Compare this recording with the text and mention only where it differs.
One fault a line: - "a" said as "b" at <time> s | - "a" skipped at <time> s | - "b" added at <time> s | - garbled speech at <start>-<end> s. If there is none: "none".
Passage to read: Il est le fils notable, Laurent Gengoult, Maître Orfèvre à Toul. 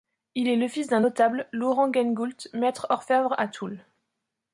- "d'un" added at 0.9 s